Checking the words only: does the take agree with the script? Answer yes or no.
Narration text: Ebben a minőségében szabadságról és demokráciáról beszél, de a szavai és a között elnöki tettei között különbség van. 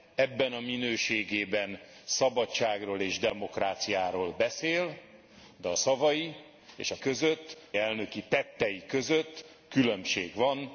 yes